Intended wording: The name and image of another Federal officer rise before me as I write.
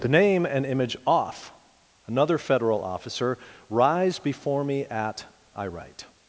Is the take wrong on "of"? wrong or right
wrong